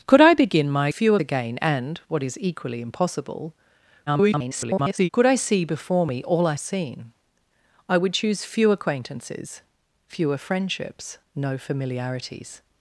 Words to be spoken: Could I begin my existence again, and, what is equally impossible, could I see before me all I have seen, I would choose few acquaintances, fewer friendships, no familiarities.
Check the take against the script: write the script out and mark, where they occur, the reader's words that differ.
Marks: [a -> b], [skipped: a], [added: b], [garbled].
Could I begin my [existence -> few] again, and, what is equally impossible, [garbled] could I see before me all I [skipped: have] seen, I would choose few acquaintances, fewer friendships, no familiarities.